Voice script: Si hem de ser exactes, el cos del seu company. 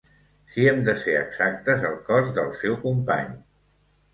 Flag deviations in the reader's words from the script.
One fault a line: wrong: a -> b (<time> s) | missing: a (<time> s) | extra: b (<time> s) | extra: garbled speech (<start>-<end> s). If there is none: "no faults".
no faults